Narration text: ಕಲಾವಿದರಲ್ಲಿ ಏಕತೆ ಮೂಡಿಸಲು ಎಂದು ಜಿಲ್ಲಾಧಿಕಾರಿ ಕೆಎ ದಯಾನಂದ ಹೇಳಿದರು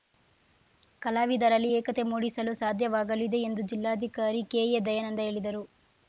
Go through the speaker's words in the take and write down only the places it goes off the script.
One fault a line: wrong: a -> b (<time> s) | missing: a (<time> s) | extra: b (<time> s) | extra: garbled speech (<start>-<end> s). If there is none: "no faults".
extra: ಸಾಧ್ಯವಾಗಲಿದೆ (2.5 s)